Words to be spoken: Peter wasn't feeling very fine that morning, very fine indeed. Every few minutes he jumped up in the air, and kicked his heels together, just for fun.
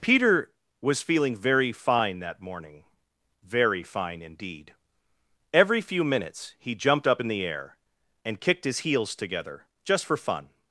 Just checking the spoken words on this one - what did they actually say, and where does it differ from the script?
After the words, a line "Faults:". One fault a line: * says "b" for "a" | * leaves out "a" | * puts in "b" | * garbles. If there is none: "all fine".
Peter was feeling very fine that morning, very fine indeed. Every few minutes he jumped up in the air, and kicked his heels together, just for fun.
Faults:
* says "was" for "wasn't"